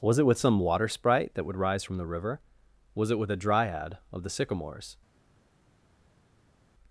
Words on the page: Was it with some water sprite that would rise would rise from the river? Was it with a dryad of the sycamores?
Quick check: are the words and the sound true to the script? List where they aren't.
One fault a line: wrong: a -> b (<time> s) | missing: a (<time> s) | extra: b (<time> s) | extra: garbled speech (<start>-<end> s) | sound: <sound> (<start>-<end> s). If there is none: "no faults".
missing: would rise (1.8 s)